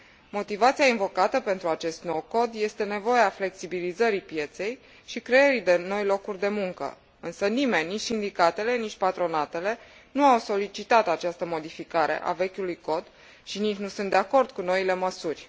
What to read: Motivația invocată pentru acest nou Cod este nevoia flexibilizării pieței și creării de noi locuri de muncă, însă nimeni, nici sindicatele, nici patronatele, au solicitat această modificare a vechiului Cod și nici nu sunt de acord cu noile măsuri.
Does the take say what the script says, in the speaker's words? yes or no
no